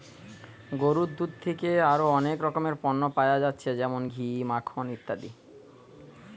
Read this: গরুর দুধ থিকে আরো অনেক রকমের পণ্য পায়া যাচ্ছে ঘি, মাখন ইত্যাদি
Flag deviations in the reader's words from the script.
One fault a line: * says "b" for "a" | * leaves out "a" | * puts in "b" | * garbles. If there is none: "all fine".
* puts in "যেমন"